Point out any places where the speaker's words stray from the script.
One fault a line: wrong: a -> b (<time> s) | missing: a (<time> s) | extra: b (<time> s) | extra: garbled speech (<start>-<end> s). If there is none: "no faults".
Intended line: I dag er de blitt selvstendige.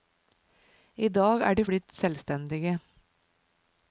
no faults